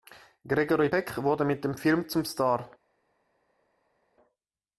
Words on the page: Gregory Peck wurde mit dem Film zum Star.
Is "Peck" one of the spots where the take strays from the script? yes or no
no